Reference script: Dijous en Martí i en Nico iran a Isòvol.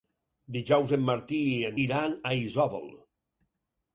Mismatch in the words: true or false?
true